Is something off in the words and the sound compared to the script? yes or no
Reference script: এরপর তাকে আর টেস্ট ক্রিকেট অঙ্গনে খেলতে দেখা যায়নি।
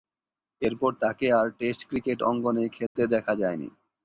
yes